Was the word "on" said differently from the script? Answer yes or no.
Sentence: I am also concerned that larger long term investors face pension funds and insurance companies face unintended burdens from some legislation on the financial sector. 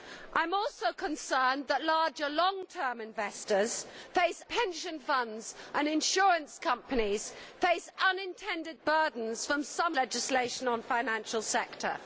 no